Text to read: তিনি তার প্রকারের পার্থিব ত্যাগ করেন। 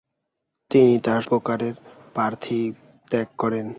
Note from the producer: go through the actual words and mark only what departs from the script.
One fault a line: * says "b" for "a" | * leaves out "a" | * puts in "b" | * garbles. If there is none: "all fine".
all fine